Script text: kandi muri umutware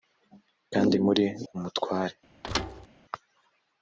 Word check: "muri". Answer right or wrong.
right